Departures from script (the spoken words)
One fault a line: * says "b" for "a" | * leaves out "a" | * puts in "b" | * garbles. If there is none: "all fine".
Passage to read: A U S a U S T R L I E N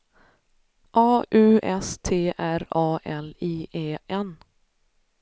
* leaves out "a U S"
* puts in "A"